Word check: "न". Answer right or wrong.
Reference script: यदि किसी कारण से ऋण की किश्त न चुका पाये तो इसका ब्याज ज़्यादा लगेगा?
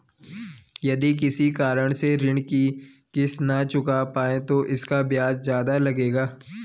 right